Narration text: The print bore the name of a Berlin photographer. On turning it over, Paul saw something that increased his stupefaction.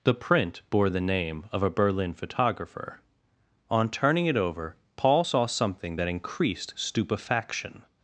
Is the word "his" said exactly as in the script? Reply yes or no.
no